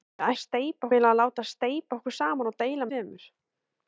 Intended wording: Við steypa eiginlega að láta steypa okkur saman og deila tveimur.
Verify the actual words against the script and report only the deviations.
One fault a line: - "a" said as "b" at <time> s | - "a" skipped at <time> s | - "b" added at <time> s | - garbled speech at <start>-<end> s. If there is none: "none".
none